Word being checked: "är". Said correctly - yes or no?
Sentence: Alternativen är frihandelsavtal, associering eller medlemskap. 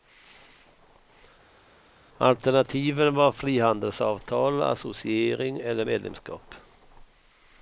no